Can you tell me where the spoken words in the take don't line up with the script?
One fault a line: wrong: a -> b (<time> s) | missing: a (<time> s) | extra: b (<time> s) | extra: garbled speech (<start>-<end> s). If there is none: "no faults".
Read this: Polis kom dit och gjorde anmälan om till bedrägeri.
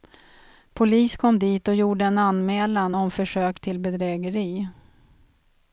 extra: en (2.0 s)
extra: försök (3.1 s)